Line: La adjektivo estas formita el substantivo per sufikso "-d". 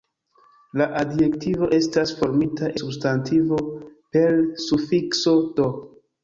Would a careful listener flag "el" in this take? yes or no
yes